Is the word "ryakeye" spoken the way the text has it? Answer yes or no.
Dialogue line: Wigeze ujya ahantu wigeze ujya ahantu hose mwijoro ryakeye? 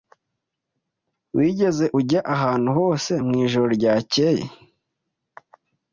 yes